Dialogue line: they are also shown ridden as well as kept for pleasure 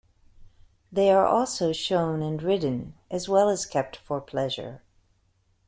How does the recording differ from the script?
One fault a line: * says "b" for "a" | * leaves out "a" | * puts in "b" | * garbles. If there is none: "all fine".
* puts in "and"